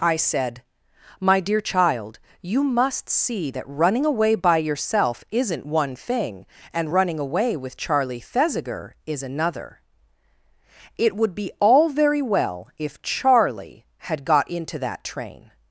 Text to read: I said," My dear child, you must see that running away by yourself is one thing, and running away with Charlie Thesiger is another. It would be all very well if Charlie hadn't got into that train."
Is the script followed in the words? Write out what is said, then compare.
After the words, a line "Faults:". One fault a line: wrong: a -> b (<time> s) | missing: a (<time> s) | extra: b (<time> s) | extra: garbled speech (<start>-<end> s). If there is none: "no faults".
I said," My dear child, you must see that running away by yourself isn't one thing, and running away with Charlie Thesiger is another. It would be all very well if Charlie had got into that train."
Faults:
wrong: is -> isn't (5.3 s)
wrong: hadn't -> had (14.0 s)